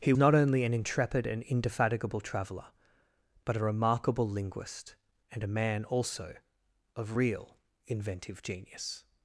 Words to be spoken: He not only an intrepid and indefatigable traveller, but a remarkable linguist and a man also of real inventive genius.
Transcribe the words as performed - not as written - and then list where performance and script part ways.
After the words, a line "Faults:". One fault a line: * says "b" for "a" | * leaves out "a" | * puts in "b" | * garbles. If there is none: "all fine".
He not only an intrepid and indefatigable traveller, but a remarkable linguist and a man also of real inventive genius.
Faults:
all fine